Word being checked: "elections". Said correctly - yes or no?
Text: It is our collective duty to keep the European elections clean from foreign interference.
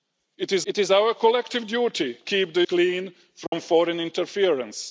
no